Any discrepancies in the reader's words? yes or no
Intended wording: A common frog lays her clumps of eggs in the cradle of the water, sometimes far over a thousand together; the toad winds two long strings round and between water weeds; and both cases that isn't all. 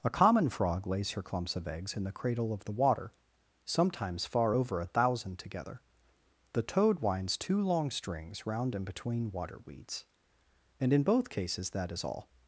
yes